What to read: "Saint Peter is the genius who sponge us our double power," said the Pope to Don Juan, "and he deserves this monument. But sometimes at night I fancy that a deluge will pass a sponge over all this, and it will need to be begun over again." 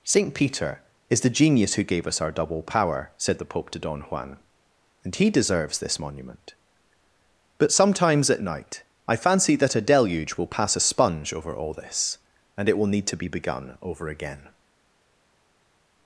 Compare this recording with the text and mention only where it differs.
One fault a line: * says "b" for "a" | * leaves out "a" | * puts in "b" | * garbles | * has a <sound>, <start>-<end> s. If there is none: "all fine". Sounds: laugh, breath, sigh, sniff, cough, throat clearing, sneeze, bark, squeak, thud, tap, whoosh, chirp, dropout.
* says "gave" for "sponge"